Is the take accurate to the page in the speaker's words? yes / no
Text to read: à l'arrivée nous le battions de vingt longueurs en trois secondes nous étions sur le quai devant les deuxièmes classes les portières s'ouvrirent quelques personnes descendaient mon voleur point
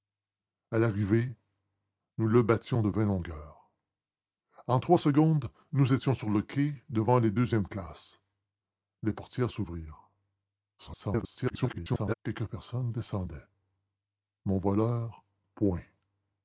no